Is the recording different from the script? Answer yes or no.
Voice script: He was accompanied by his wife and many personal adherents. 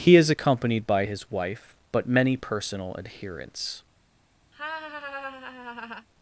yes